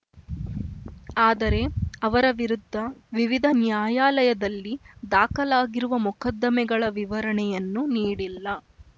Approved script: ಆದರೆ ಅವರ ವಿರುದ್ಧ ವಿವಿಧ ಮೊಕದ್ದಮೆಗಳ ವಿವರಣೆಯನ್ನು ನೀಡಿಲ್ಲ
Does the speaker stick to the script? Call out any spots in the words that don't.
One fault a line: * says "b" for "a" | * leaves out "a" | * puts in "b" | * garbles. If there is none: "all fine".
* puts in "ನ್ಯಾಯಾಲಯದಲ್ಲಿ ದಾಖಲಾಗಿರುವ"